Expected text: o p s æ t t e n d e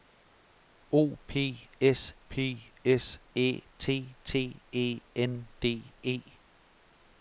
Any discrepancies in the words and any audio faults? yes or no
yes